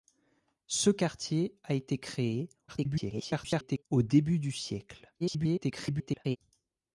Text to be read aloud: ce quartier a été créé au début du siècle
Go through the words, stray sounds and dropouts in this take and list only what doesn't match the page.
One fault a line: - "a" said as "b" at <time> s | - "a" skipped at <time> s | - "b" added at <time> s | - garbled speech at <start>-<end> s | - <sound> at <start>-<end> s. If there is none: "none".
- garbled speech at 2.7-3.8 s
- garbled speech at 5.2-6.4 s